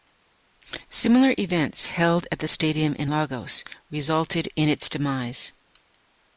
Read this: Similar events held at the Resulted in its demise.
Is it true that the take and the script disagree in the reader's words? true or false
true